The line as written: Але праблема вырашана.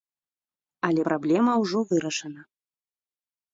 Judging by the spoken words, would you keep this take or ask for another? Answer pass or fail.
fail